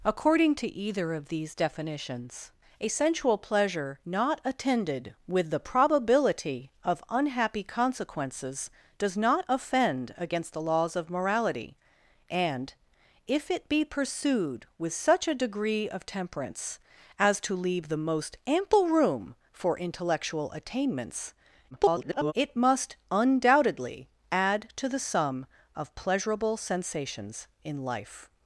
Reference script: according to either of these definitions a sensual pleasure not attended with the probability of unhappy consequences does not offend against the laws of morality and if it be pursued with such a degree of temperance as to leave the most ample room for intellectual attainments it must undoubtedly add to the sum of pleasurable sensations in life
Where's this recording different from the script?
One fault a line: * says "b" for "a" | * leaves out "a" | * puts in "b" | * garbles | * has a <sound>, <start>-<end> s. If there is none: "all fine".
* garbles